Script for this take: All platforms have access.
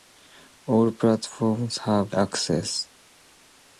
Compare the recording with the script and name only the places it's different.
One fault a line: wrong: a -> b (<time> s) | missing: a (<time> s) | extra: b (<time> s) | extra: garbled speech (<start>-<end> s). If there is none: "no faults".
no faults